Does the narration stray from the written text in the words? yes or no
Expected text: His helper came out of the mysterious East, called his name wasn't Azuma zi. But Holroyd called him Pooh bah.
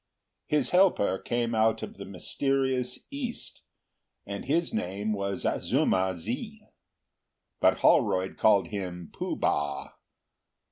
yes